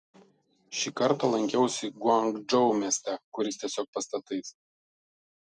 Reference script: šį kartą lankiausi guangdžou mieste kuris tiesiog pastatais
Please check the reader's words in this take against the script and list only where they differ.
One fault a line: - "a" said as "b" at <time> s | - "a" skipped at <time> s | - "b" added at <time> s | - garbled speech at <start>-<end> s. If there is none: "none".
none